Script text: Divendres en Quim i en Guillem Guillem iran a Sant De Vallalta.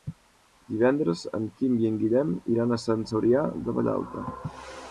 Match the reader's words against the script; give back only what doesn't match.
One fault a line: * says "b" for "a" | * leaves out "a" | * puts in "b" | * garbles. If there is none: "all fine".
* leaves out "Guillem"
* puts in "Cebrià"